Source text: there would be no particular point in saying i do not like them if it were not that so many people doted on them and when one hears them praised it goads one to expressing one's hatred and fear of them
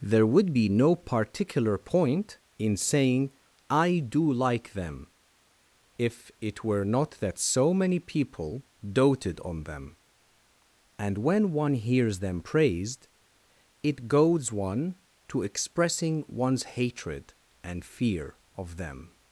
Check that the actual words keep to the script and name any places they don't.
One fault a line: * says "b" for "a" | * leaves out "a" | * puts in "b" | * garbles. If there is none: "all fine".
* leaves out "not"